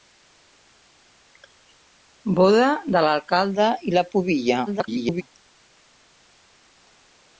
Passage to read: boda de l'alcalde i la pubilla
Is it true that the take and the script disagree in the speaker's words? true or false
true